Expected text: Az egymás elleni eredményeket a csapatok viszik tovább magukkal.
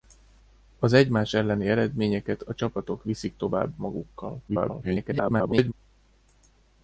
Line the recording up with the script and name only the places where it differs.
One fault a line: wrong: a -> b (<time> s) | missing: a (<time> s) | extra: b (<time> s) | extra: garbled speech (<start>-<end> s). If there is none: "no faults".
extra: garbled speech (4.5-5.7 s)